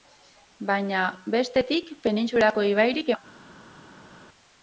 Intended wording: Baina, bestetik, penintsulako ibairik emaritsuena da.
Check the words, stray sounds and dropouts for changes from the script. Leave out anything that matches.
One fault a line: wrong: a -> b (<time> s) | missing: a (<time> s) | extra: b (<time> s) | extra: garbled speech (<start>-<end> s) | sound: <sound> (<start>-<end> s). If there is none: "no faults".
missing: emaritsuena (3.1 s)